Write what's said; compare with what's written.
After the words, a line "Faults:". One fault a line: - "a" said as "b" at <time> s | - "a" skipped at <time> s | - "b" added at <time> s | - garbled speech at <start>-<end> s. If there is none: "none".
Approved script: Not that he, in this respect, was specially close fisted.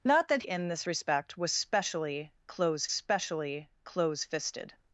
Not that in this respect, was specially close specially close fisted.
Faults:
- "he" skipped at 0.4 s
- "specially close" added at 2.9 s